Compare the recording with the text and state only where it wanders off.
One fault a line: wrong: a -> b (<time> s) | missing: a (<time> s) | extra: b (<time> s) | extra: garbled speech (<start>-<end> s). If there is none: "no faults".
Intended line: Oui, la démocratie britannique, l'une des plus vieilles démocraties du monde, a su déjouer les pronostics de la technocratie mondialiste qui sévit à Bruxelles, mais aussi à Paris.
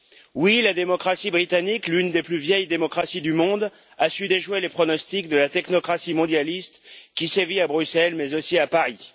no faults